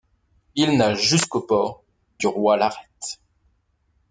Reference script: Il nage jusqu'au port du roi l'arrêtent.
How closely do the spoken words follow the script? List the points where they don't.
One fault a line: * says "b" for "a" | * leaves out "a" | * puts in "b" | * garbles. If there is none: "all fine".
all fine